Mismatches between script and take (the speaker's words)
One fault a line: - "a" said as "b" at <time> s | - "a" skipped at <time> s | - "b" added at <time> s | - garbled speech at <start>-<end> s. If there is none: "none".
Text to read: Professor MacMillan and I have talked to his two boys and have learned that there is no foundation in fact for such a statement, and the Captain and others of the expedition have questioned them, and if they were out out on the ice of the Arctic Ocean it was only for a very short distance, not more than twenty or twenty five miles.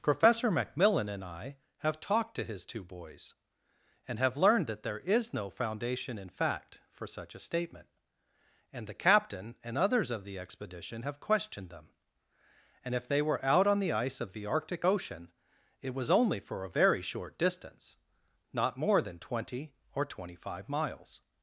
- "out" skipped at 13.7 s